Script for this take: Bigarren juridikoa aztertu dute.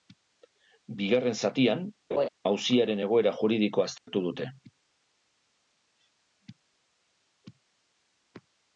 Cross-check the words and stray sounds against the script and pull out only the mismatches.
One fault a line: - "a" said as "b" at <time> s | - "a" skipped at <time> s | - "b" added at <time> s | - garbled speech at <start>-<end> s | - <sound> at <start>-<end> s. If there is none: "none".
- "zatian auziaren egoera" added at 1.5 s
- laugh at 2.1-2.3 s
- dropout at 4.0-4.1 s